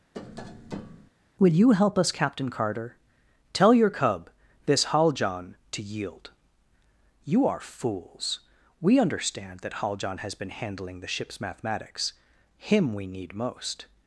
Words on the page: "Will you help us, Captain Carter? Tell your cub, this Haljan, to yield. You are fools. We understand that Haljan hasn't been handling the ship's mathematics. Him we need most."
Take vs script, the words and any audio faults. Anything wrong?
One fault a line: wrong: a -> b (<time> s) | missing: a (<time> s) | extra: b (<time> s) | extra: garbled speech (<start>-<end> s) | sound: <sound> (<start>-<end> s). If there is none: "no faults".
sound: tap (0.1-1.1 s)
wrong: hasn't -> has (10.2 s)